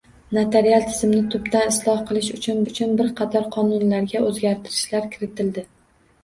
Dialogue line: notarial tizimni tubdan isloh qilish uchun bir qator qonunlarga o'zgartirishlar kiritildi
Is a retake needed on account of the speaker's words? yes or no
yes